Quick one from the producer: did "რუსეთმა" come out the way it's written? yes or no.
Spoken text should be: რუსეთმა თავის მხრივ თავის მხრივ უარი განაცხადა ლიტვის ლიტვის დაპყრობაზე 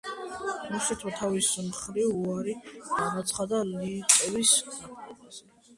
yes